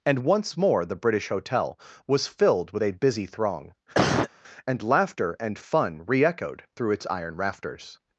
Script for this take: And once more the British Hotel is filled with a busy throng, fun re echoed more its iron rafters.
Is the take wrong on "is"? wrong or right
wrong